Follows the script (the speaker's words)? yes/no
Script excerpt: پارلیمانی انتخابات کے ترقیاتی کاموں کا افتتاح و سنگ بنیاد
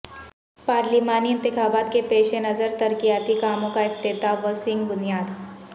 no